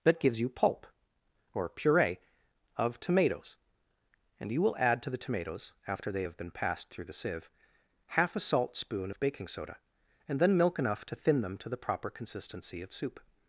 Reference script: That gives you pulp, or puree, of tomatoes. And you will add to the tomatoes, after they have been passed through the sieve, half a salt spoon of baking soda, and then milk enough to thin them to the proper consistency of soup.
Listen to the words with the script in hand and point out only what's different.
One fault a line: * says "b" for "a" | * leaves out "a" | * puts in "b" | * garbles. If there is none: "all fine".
all fine